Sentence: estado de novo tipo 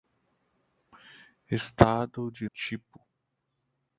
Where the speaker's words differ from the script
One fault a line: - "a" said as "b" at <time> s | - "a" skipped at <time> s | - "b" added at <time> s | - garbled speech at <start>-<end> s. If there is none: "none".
- "novo" skipped at 2.5 s